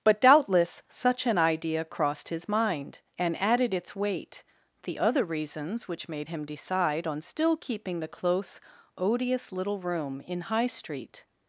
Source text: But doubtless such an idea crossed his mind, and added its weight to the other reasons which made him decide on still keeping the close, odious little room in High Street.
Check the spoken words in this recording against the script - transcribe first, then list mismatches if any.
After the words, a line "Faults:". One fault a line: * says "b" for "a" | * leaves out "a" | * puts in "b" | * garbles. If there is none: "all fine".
But doubtless such an idea crossed his mind, and added its weight the other reasons which made him decide on still keeping the close, odious little room in High Street.
Faults:
* leaves out "to"